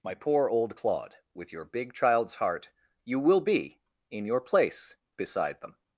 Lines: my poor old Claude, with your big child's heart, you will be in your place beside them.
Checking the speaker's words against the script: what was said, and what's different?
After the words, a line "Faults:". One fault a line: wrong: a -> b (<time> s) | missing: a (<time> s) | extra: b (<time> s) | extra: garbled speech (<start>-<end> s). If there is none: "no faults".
my poor old Claude, with your big child's heart, you will be in your place beside them.
Faults:
no faults